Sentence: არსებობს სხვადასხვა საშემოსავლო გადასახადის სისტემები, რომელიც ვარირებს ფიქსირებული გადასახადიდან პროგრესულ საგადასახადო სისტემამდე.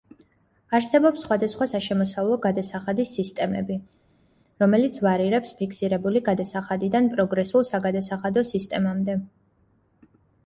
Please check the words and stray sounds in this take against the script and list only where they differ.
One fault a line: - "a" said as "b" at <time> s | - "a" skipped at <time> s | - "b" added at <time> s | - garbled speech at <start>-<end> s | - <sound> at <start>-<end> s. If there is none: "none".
none